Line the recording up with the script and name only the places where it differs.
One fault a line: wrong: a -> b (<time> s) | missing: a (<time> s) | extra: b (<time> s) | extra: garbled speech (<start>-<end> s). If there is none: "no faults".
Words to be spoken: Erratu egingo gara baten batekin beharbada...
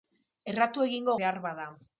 missing: gara baten batekin (1.2 s)